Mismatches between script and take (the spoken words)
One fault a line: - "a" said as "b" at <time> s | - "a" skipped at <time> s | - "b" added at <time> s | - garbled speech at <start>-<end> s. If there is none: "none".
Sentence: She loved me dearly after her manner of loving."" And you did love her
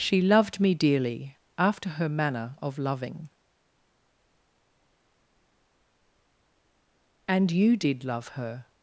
none